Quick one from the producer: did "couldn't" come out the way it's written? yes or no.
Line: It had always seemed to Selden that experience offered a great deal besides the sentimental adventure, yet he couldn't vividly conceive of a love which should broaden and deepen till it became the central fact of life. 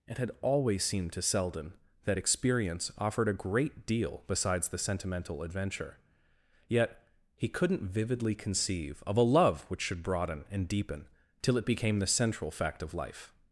yes